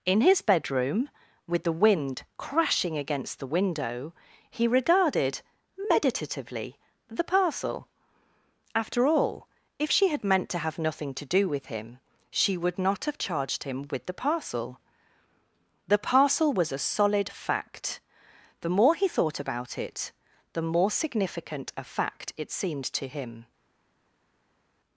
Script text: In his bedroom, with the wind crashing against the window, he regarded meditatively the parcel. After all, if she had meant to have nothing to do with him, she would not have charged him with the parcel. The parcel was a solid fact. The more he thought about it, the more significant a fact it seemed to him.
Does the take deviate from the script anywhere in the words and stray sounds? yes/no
no